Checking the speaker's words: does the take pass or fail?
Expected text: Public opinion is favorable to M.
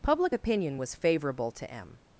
fail